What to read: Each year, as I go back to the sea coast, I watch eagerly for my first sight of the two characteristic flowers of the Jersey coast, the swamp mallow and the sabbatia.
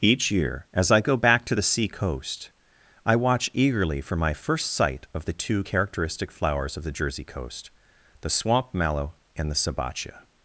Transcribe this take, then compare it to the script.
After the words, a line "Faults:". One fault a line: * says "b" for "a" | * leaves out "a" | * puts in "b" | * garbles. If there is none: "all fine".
Each year, as I go back to the sea coast, I watch eagerly for my first sight of the two characteristic flowers of the Jersey coast, the swamp mallow and the sabbatia.
Faults:
all fine